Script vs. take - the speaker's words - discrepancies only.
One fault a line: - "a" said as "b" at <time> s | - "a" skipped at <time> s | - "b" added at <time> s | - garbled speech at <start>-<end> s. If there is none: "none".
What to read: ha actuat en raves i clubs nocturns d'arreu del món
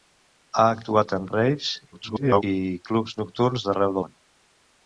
- garbled speech at 1.9-2.4 s
- "del" skipped at 4.0 s